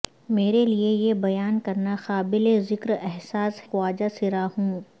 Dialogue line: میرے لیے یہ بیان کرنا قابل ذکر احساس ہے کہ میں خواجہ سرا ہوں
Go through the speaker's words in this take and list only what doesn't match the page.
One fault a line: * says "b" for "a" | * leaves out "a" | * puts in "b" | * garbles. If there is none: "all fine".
* leaves out "ہے کہ میں"